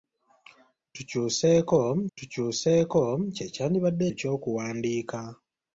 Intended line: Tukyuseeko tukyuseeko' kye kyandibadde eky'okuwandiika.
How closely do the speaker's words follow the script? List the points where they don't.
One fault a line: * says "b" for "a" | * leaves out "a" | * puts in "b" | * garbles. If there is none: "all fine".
all fine